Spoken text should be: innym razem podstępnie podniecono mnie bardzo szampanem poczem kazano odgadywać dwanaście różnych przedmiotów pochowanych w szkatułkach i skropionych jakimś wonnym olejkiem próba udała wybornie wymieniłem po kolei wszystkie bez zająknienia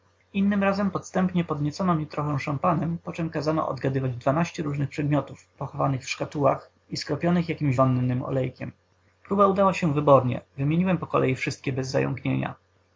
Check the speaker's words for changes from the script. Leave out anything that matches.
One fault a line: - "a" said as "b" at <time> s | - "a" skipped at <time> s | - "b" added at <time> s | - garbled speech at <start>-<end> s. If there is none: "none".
- "bardzo" said as "trochę" at 2.0 s
- "się" added at 9.7 s